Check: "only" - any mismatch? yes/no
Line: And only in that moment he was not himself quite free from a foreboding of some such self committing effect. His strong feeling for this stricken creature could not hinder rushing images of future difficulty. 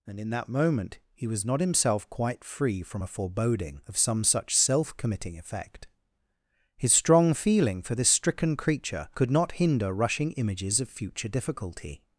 yes